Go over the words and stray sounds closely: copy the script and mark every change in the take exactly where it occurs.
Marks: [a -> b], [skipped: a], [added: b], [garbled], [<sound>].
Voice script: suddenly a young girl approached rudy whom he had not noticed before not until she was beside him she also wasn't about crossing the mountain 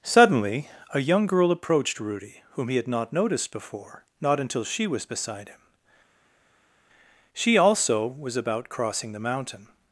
suddenly a young girl approached rudy whom he had not noticed before not until she was beside him she also [wasn't -> was] about crossing the mountain